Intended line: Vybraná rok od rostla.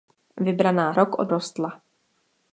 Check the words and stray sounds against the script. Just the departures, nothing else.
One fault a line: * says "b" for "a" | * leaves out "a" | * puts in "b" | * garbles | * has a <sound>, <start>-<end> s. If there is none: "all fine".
all fine